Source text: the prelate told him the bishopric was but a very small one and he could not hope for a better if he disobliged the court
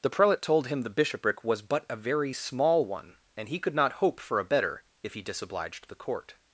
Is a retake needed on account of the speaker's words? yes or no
no